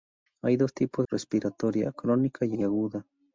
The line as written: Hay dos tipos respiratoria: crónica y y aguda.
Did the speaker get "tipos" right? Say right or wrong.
right